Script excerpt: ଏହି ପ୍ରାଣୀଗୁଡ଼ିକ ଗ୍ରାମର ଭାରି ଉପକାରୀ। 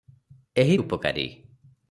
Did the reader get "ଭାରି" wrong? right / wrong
wrong